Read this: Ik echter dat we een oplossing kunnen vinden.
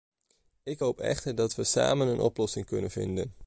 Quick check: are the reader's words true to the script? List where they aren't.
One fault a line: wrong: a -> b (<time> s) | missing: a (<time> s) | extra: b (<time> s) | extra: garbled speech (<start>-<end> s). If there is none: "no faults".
extra: hoop (0.8 s)
extra: samen (1.6 s)